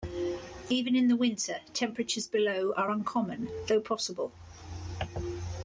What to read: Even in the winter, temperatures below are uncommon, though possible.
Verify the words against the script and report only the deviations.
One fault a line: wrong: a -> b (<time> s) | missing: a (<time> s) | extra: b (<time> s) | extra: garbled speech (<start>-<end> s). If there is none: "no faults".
no faults